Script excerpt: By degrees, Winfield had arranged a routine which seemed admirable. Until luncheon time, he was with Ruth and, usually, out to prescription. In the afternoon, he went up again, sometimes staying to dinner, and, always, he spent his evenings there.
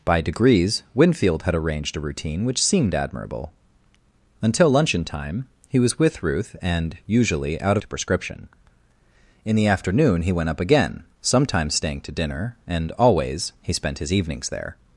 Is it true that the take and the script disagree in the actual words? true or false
false